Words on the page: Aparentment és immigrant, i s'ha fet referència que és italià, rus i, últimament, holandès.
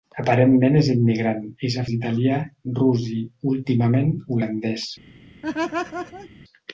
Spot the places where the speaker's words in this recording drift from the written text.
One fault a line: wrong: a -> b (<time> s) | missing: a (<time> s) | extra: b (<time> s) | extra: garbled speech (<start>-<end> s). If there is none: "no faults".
missing: fet referència que (1.8 s)